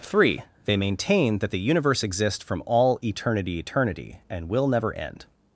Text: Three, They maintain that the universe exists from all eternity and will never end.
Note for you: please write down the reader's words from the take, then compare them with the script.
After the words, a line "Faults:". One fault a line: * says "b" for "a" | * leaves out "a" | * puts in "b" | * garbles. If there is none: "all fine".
Three, They maintain that the universe exists from all eternity eternity and will never end.
Faults:
* puts in "eternity"